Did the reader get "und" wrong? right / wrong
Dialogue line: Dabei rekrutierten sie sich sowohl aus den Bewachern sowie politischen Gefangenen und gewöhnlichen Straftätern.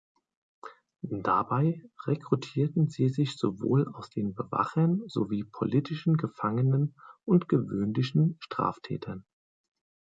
right